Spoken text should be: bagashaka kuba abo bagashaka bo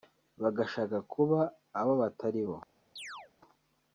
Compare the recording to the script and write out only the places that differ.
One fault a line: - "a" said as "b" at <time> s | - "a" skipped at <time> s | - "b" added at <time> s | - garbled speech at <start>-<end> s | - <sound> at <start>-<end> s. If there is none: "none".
- "bagashaka" said as "batari" at 2.0 s
- chirp at 3.0-3.3 s